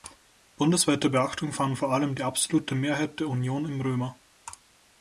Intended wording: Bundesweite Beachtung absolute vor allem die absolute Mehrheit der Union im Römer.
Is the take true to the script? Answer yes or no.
no